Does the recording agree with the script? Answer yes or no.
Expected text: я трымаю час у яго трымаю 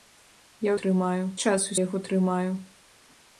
yes